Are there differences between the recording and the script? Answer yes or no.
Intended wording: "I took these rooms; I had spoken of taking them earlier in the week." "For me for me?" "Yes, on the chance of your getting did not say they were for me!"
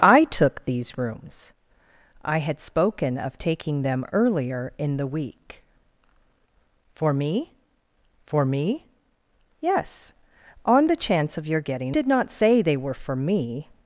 no